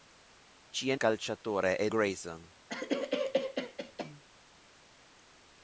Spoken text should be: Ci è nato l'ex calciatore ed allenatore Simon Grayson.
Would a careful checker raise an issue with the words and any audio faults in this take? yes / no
yes